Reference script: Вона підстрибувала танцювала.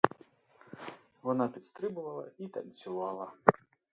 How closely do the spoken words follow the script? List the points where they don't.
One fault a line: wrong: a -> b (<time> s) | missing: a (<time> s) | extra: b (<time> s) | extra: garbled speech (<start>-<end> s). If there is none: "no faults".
extra: і (2.4 s)